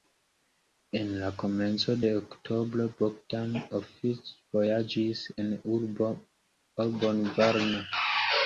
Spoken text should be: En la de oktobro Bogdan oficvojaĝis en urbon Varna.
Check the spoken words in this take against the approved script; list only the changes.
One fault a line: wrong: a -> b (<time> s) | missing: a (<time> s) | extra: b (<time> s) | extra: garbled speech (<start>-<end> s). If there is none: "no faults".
extra: komenco (1.4 s)